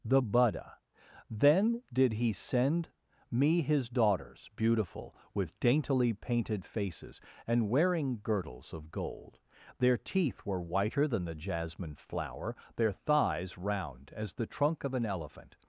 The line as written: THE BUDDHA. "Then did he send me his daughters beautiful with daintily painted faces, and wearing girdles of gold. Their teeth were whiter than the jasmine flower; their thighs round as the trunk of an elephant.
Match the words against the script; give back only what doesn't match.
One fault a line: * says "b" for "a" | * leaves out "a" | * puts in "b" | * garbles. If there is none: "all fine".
all fine